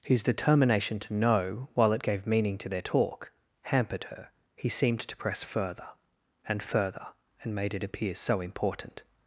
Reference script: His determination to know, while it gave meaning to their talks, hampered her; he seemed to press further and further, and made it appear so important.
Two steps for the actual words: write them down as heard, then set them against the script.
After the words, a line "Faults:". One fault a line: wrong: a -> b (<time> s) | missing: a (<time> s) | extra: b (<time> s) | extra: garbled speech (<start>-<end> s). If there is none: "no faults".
His determination to know, while it gave meaning to their talk, hampered her; he seemed to press further and further, and made it appear so important.
Faults:
wrong: talks -> talk (2.8 s)